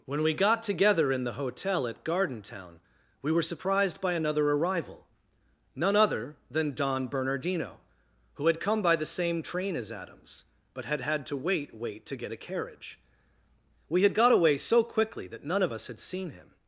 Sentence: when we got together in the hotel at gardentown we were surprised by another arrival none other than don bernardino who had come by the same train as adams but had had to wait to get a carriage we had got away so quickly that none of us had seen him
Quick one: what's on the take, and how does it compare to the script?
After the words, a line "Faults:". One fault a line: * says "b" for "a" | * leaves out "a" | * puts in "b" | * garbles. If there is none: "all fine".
when we got together in the hotel at gardentown we were surprised by another arrival none other than don bernardino who had come by the same train as adams but had had to wait wait to get a carriage we had got away so quickly that none of us had seen him
Faults:
* puts in "wait"